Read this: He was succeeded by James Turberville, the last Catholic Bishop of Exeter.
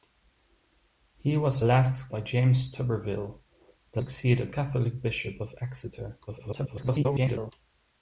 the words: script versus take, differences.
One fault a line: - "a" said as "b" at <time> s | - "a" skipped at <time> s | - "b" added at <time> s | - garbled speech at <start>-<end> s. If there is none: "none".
- "succeeded" said as "last" at 1.6 s
- "last" said as "succeeded" at 4.0 s
- garbled speech at 6.3-7.5 s